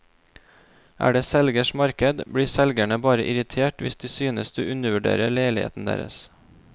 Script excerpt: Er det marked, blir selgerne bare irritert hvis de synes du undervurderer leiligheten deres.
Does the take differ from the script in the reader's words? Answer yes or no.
yes